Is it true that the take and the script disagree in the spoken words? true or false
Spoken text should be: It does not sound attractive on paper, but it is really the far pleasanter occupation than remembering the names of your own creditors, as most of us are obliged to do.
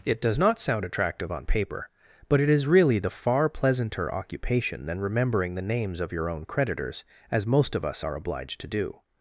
false